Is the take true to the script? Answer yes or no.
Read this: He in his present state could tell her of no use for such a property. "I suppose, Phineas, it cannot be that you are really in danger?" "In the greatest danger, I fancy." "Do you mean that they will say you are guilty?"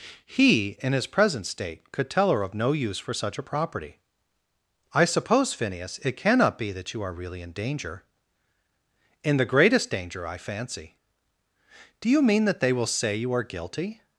yes